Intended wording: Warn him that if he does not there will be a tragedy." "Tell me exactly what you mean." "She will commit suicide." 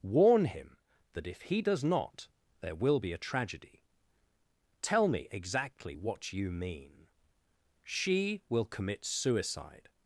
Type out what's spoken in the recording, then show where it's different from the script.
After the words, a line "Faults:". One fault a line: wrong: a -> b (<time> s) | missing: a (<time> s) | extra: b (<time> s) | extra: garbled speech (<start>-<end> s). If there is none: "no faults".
Warn him that if he does not there will be a tragedy." "Tell me exactly what you mean." "She will commit suicide."
Faults:
no faults